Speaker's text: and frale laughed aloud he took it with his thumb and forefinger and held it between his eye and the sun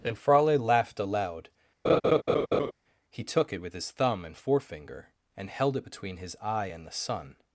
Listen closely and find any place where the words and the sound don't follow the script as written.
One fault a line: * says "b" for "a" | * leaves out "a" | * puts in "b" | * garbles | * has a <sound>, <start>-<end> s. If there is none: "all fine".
* has a laugh, 1.8-2.7 s